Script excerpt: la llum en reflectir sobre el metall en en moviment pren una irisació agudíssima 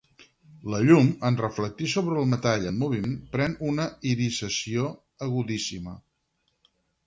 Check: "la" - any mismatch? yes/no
no